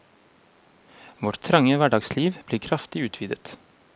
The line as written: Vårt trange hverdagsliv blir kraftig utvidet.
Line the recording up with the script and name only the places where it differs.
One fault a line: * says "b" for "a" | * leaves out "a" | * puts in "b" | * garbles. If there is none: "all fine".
all fine